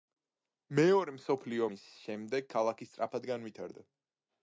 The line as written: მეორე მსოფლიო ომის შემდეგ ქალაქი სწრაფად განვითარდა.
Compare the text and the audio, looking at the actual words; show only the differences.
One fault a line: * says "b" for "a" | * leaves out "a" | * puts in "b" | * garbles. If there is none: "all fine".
all fine